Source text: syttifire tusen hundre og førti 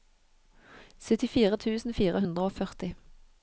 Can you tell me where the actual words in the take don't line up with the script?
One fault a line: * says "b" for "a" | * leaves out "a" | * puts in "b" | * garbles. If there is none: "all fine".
* puts in "fire"